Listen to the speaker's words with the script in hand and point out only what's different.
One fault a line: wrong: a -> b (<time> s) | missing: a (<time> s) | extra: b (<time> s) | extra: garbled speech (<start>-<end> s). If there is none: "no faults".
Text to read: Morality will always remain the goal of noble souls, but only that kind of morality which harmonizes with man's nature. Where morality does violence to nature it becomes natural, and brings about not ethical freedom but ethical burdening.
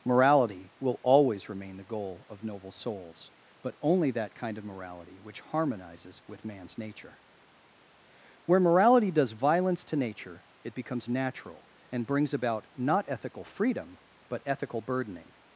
no faults